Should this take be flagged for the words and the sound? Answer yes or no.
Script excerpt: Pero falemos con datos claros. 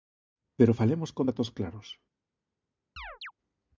yes